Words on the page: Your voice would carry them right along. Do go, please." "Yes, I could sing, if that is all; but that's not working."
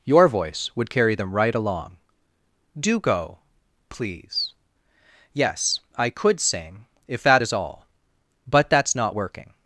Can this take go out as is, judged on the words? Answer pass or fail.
pass